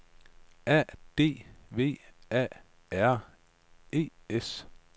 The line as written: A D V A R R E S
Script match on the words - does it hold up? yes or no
no